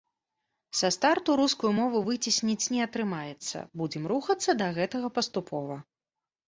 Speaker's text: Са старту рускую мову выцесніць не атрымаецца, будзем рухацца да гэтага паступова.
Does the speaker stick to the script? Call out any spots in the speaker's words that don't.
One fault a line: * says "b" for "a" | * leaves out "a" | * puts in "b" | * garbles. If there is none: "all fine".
all fine